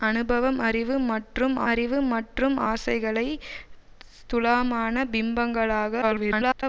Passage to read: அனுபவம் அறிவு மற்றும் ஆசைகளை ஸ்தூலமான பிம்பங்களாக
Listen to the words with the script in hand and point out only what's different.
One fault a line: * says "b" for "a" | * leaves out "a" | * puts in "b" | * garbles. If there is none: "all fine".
* puts in "அறிவு மற்றும்"
* garbles